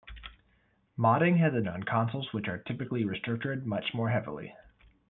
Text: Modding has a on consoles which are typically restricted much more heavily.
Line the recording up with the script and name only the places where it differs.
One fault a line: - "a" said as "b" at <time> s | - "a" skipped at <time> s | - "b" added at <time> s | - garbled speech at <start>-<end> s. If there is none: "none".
none